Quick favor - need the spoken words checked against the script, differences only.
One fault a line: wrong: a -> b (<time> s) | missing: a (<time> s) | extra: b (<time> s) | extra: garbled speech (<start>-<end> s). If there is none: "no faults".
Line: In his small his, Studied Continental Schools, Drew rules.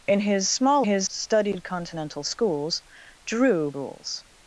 no faults